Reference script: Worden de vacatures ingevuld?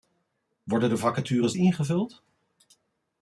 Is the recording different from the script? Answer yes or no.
no